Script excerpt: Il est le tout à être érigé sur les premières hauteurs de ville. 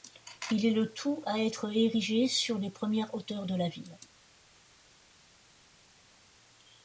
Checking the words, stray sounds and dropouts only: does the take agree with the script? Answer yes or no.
no